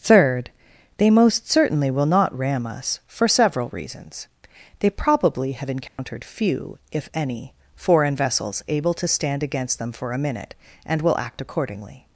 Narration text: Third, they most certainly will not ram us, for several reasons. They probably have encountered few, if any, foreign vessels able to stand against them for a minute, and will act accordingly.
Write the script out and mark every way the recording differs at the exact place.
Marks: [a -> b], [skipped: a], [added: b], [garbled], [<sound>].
Third, they most certainly will not ram us, for several reasons. They probably have encountered [dropout] few, if any, foreign vessels able to stand against them for a minute, and will act accordingly.